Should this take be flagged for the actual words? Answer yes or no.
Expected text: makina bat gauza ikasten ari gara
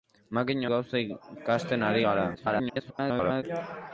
yes